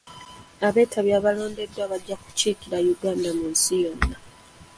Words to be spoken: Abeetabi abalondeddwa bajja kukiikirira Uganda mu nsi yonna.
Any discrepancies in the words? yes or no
no